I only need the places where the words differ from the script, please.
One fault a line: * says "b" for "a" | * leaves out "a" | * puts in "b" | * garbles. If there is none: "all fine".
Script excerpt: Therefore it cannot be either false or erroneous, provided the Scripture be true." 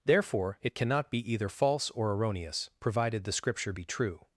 all fine